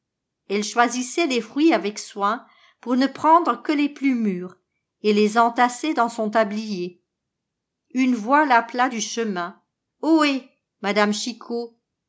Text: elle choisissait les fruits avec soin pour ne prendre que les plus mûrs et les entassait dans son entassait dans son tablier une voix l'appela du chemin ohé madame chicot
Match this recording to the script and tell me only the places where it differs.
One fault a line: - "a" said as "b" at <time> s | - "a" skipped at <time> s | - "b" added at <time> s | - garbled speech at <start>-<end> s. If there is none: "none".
- "entassait dans son" skipped at 6.3 s